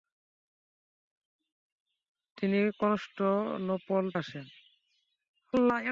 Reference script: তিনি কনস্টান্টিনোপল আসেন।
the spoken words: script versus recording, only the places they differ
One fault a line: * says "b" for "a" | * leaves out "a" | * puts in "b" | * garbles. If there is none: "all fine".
all fine